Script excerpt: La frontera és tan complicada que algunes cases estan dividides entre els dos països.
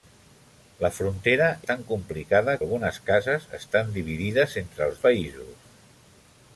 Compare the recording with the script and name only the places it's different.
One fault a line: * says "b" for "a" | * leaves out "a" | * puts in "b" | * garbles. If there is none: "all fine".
* leaves out "és"
* leaves out "que"
* leaves out "dos"